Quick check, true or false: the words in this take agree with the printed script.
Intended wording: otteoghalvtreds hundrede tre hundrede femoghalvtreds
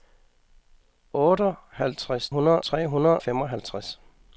true